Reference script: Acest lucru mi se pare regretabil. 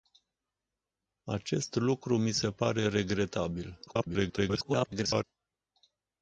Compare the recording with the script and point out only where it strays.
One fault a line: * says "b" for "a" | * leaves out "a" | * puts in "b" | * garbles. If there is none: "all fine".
* garbles